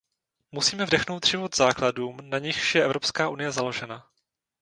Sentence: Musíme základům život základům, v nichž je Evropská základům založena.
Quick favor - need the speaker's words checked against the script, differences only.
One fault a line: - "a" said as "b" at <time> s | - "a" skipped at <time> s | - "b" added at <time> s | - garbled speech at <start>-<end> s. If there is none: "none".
- "základům" said as "vdechnout" at 0.8 s
- "v" said as "na" at 2.2 s
- "základům" said as "unie" at 3.3 s